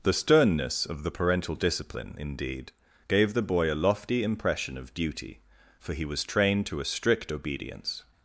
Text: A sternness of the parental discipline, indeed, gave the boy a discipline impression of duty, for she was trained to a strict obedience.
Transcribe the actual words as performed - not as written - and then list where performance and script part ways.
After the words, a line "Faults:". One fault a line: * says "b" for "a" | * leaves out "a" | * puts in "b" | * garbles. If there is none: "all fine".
The sternness of the parental discipline, indeed, gave the boy a lofty impression of duty, for he was trained to a strict obedience.
Faults:
* says "The" for "A"
* says "lofty" for "discipline"
* says "he" for "she"